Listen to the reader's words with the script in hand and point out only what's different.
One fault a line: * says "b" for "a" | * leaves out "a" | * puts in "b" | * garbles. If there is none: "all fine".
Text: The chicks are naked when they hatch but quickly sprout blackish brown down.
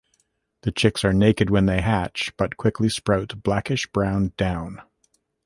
all fine